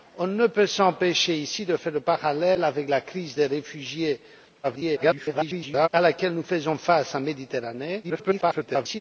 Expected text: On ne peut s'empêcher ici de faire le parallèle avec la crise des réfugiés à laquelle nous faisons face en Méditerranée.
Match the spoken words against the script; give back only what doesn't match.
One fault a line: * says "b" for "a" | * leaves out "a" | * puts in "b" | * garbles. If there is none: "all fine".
* garbles
* garbles